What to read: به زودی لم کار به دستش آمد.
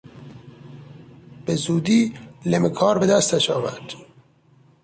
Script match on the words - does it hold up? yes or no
yes